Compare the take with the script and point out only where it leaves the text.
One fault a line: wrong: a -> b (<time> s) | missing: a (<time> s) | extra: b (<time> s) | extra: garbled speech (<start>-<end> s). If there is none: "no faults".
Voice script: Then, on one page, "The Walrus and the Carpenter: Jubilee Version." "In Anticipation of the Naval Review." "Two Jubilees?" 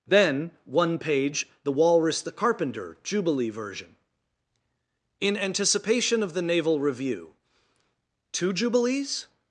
missing: on (0.5 s)
missing: and (2.2 s)